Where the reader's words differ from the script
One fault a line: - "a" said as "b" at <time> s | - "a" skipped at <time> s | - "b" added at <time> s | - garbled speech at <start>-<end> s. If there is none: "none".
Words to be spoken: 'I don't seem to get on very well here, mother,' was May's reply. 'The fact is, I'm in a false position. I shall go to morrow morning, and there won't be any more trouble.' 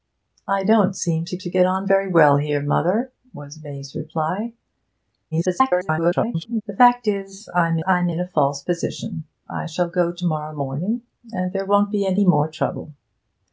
- "to" added at 1.4 s
- garbled speech at 5.3-6.6 s
- "I'm" added at 7.8 s